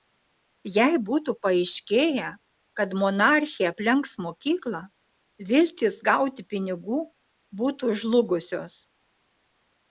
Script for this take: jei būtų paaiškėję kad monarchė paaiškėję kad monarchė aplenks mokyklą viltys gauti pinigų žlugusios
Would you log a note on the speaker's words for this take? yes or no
yes